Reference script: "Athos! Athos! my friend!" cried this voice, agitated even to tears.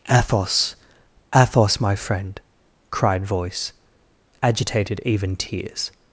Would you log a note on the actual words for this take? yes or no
yes